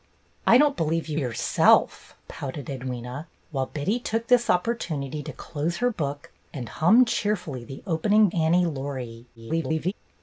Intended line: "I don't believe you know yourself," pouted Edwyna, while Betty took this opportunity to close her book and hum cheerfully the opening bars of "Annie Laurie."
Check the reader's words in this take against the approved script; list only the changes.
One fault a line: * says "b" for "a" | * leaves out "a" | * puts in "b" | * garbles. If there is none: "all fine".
* leaves out "know"
* leaves out "bars of"
* garbles